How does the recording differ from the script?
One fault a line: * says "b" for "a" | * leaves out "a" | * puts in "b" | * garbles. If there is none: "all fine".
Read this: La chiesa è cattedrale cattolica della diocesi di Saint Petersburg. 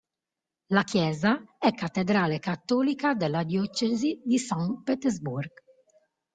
all fine